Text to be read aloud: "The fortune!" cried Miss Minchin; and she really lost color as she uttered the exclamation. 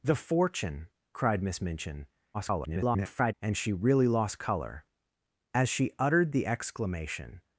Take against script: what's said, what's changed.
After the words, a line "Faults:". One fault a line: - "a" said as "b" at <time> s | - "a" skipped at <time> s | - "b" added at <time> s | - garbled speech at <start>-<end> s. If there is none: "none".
"The fortune!" cried Miss Minchin; [garbled] and she really lost color as she uttered the exclamation.
Faults:
- garbled speech at 2.3-3.3 s